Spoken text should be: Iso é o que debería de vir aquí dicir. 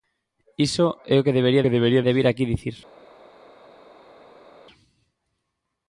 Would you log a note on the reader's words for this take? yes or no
yes